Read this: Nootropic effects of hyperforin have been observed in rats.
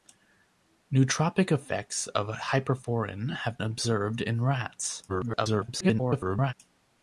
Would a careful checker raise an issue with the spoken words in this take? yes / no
yes